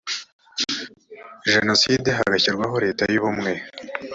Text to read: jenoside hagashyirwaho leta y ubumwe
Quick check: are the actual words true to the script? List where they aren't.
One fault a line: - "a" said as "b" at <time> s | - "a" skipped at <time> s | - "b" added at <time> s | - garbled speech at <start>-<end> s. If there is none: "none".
none